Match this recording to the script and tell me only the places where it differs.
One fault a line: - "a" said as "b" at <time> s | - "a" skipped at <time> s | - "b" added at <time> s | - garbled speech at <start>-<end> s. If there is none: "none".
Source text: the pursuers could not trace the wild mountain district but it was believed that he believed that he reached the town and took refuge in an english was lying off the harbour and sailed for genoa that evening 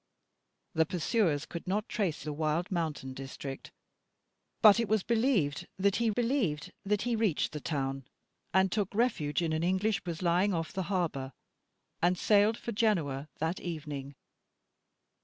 none